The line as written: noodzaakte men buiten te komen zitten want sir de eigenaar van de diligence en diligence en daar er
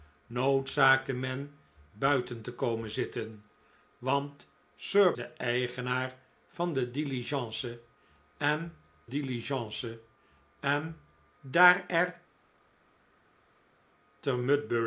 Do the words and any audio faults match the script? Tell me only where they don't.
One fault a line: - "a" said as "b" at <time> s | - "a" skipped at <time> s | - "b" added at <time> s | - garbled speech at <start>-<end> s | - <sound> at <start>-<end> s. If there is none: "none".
none